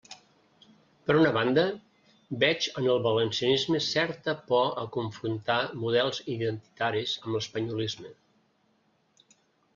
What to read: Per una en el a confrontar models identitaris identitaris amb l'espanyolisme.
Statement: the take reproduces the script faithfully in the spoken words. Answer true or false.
false